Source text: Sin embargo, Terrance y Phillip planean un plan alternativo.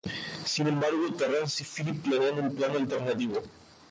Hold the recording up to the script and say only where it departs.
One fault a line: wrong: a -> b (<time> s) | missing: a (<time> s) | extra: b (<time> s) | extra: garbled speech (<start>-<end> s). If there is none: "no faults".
no faults